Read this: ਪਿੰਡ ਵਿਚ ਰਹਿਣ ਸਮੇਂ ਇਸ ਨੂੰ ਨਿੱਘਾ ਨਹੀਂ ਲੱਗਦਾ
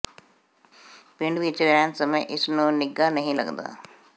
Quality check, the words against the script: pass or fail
pass